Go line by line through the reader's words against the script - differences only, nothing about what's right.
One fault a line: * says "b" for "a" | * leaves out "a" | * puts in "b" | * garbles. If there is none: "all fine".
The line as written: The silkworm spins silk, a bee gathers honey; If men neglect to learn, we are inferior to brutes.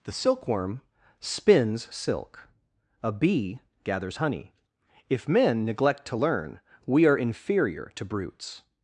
all fine